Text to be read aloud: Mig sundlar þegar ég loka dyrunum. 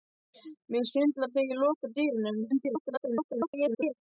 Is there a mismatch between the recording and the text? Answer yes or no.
yes